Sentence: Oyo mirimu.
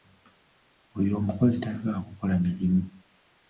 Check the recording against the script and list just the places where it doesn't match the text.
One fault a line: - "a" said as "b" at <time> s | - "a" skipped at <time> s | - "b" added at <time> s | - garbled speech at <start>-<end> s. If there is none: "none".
- "omukozi tayagala kukola" added at 1.2 s